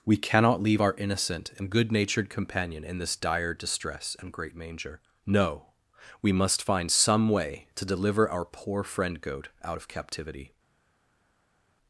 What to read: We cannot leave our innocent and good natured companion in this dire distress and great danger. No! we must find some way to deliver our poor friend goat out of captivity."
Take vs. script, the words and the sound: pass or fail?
fail